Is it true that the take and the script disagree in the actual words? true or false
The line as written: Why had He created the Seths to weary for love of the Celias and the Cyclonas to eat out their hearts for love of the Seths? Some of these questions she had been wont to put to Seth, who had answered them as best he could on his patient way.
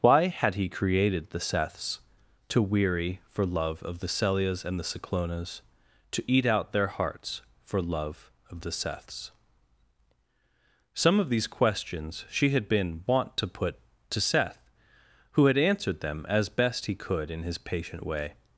true